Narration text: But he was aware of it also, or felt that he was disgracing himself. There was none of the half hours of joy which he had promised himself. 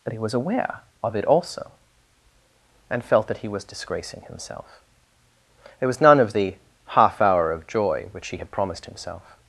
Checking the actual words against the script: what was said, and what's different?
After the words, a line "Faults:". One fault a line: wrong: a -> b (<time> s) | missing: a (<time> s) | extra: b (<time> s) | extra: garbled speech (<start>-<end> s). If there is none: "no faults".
But he was aware of it also, and felt that he was disgracing himself. There was none of the half hour of joy which he had promised himself.
Faults:
wrong: or -> and (2.9 s)
wrong: hours -> hour (7.2 s)